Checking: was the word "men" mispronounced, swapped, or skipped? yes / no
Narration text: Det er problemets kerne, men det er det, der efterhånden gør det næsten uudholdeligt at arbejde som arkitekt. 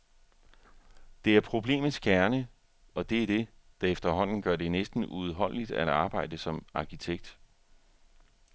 yes